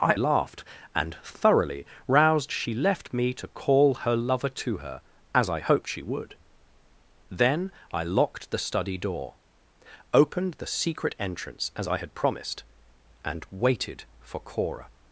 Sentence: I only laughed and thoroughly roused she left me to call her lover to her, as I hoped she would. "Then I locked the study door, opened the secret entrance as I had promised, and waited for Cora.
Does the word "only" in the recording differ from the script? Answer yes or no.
yes